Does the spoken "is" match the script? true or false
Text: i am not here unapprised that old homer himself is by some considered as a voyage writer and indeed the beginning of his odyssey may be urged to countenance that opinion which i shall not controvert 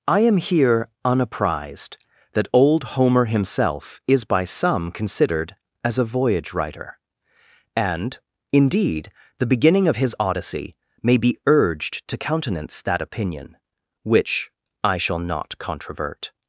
true